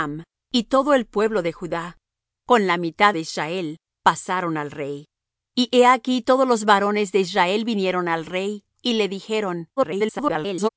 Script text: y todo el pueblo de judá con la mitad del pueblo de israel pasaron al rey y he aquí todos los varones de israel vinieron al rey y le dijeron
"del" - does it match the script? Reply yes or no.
no